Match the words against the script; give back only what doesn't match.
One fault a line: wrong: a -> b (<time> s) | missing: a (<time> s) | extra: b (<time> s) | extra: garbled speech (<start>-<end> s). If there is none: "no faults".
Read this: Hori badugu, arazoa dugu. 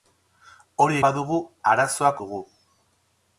no faults